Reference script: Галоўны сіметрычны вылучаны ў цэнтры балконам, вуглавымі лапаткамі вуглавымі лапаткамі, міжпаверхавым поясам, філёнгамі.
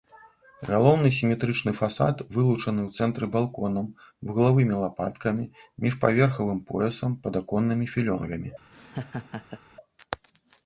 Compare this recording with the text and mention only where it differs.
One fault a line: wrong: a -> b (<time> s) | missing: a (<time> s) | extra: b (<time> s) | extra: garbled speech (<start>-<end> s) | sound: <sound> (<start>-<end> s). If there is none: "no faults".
extra: фасад (1.8 s)
missing: вуглавымі лапаткамі (5.4 s)
extra: падаконнымі (7.3 s)
sound: laugh (8.7-9.6 s)